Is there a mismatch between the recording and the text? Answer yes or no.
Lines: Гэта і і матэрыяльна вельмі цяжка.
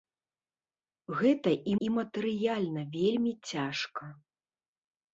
no